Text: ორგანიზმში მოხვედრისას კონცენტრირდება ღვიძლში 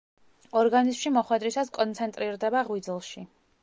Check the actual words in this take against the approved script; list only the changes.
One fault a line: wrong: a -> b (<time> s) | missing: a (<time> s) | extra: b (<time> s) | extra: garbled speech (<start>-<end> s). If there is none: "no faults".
no faults